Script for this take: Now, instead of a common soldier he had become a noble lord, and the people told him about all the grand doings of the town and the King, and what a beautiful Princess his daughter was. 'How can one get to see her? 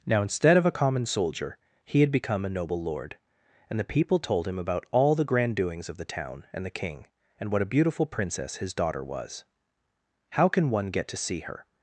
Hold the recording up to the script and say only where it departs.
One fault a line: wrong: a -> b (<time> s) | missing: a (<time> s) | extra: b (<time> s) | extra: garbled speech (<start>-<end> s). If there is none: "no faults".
no faults